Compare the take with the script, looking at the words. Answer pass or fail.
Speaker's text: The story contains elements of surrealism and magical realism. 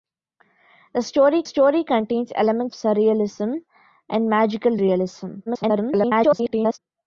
fail